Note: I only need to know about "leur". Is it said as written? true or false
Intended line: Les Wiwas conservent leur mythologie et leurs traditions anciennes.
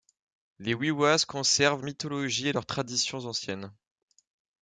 false